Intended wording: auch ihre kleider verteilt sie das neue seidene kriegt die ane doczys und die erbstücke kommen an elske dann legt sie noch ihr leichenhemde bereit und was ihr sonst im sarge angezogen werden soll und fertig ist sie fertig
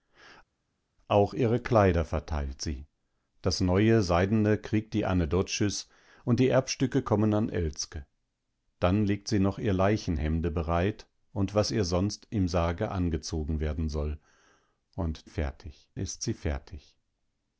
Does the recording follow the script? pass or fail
pass